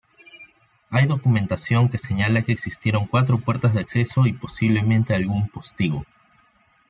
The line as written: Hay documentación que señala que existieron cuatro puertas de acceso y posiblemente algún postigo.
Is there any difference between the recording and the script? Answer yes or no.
no